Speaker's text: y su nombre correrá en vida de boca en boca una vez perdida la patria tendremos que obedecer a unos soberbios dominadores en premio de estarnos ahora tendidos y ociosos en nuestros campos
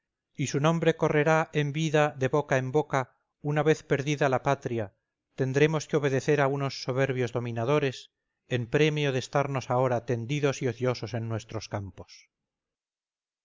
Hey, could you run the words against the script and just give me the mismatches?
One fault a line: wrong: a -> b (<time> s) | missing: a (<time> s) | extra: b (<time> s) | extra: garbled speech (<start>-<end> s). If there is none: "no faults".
no faults